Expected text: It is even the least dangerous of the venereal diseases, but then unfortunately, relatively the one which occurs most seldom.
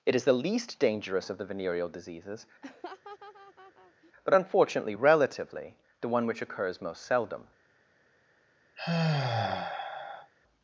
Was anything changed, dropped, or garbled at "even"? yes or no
yes